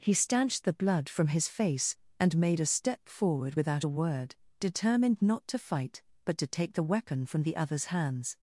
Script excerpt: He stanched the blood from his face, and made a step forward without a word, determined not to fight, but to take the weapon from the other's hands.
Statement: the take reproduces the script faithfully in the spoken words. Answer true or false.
true